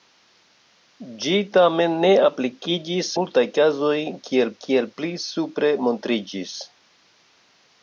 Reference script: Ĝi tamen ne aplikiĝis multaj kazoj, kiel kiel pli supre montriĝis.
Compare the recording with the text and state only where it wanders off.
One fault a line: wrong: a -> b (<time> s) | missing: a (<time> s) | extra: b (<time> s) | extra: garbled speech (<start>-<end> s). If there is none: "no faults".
no faults